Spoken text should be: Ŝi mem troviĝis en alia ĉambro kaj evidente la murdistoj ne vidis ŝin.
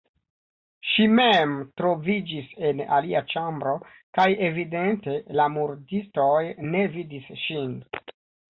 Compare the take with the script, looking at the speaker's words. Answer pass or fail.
pass